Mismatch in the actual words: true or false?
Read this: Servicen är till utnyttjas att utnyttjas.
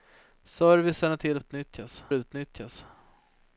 false